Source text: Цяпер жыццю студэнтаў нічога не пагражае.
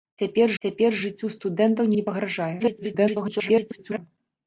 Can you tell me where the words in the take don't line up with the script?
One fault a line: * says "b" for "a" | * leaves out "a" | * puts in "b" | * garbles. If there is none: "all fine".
* puts in "цяпер"
* leaves out "нічога"
* garbles